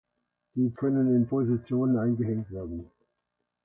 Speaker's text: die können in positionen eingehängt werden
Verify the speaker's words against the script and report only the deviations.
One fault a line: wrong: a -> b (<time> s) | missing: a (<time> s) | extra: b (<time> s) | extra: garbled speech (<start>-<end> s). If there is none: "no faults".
no faults